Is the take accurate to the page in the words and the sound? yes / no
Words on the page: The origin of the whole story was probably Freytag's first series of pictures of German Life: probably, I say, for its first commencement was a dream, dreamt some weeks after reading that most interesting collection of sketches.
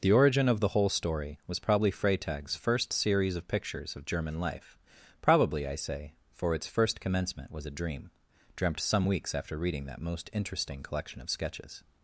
yes